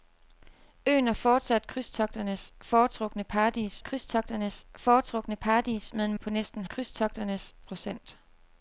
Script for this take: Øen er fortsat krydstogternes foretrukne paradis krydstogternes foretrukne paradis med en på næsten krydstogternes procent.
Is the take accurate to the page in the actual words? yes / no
yes